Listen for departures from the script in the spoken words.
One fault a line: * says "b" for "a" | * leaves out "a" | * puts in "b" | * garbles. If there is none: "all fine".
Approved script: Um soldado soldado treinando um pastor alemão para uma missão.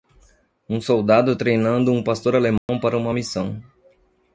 * leaves out "soldado"